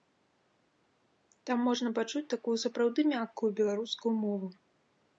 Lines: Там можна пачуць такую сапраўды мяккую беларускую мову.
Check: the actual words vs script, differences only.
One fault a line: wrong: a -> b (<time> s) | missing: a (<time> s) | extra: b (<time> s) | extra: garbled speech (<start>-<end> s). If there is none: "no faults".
no faults